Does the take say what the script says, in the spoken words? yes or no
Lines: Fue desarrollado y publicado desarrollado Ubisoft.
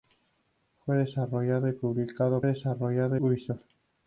yes